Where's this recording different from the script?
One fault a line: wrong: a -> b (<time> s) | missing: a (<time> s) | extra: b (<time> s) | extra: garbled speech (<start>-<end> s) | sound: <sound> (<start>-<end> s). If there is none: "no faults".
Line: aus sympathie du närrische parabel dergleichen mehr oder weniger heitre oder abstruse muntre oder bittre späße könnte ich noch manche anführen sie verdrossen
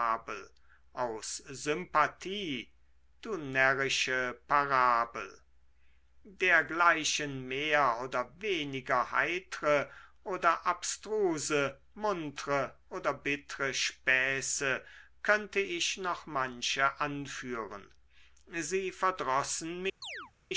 sound: chirp (20.0-20.3 s)